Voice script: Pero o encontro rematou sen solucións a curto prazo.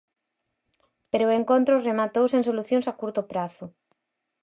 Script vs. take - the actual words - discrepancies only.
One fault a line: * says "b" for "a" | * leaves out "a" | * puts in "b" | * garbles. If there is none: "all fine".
all fine